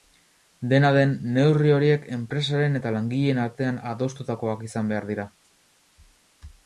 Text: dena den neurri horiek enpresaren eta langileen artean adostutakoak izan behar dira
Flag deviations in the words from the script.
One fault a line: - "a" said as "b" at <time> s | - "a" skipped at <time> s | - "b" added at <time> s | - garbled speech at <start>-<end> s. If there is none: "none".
none